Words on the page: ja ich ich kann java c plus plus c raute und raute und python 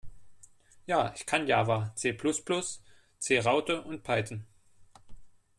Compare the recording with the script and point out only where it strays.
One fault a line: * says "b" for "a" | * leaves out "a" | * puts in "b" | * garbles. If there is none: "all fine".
* leaves out "ich"
* leaves out "raute und"